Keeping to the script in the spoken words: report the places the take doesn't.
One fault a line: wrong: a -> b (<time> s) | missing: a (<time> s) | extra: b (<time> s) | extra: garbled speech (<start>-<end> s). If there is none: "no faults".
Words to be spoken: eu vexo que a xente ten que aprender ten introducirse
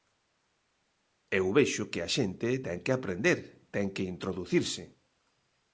extra: que (3.9 s)